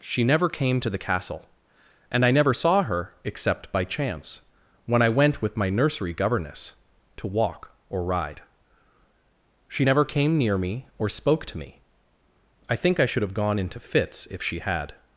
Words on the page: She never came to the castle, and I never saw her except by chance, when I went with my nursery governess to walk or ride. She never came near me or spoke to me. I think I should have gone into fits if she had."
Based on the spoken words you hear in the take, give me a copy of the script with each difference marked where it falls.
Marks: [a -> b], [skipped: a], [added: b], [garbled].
She never came to the castle, and I never saw her except by chance, when I went with my nursery governess to walk or ride. She never came near me or spoke to me. I think I should have gone into fits if she had."